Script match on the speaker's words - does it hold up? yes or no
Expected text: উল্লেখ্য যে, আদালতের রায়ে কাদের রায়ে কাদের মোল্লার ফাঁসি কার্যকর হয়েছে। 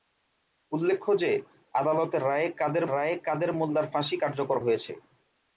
yes